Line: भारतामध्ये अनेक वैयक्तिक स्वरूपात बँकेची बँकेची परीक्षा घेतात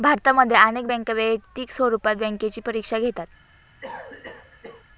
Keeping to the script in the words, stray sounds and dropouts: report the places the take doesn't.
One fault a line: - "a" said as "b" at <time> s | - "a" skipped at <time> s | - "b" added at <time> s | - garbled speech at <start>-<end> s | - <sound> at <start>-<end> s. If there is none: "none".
- "बँका" added at 0.8 s
- "बँकेची" skipped at 2.6 s
- cough at 3.8-4.9 s